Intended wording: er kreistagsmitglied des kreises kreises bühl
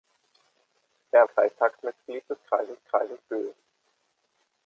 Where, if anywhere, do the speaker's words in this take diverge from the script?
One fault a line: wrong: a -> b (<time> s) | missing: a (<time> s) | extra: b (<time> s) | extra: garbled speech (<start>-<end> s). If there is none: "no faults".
no faults